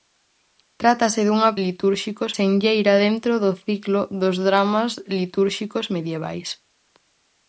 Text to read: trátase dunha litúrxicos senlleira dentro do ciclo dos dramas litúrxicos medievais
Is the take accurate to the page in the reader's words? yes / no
yes